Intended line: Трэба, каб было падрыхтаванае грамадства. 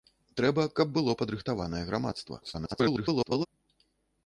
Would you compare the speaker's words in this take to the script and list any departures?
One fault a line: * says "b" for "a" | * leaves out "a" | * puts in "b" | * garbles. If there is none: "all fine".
* garbles